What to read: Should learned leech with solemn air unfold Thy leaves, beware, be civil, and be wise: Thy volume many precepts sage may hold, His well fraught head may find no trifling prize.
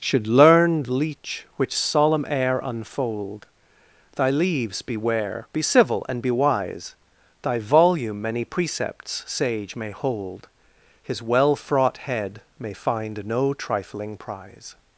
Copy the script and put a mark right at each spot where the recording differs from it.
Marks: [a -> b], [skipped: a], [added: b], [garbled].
Should learned leech [with -> which] solemn air unfold Thy leaves, beware, be civil, and be wise: Thy volume many precepts sage may hold, His well fraught head may find no trifling prize.